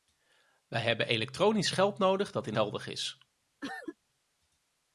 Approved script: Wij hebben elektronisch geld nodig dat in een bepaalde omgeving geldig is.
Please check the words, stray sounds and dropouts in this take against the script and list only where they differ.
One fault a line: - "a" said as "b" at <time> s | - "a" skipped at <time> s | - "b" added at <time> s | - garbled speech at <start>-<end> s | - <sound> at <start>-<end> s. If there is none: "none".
- "een bepaalde omgeving" skipped at 2.6 s
- cough at 3.6-4.0 s